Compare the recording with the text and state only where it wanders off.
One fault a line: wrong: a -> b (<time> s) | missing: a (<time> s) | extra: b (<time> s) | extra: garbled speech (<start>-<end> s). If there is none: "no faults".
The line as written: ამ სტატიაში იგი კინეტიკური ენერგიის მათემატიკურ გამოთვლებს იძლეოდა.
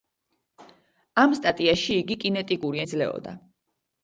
missing: ენერგიის მათემატიკურ გამოთვლებს (2.8 s)